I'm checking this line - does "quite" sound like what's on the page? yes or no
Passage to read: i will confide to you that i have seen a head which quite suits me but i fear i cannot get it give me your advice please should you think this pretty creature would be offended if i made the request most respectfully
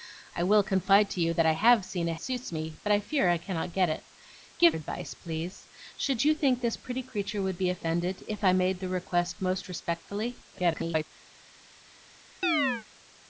no